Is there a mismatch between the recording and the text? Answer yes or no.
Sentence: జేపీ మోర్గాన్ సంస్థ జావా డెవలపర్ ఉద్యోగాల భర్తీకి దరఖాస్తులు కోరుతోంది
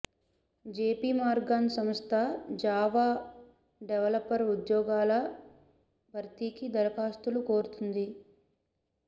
no